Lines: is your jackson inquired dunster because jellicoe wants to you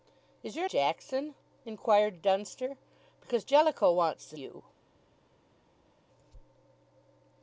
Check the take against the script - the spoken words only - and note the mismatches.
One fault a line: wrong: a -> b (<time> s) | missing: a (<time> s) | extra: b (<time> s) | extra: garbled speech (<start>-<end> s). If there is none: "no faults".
no faults